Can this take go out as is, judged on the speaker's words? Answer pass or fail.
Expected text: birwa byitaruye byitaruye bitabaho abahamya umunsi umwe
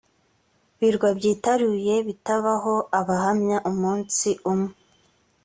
fail